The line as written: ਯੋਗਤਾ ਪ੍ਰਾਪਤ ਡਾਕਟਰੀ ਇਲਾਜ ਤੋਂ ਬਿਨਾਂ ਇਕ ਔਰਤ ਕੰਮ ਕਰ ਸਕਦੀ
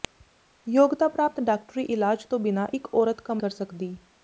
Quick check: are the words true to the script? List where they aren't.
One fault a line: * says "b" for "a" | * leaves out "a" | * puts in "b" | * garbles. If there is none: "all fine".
all fine